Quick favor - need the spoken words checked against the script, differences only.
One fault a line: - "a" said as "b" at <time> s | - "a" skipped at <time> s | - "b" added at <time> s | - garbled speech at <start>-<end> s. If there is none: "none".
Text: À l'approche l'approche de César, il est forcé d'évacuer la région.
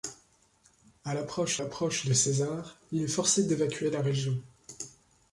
none